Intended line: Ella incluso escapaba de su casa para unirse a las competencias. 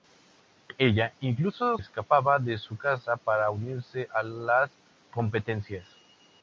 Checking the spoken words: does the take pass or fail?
pass